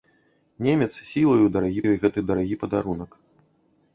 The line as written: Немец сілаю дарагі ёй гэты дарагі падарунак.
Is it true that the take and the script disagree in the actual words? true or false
false